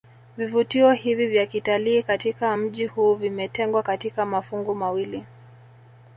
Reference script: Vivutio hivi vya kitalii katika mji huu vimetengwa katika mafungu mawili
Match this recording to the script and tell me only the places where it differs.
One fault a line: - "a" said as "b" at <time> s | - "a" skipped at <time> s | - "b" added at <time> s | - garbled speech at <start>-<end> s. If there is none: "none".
none